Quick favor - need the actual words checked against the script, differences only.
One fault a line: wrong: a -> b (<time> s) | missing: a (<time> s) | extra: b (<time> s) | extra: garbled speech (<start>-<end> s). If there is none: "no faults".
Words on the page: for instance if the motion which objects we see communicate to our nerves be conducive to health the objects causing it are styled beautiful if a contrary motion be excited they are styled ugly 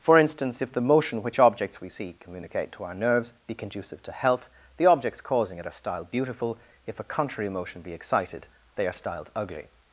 no faults